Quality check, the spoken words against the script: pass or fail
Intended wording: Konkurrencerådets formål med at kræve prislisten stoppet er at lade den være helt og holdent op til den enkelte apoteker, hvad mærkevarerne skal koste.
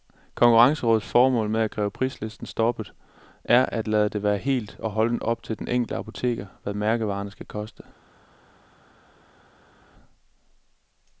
fail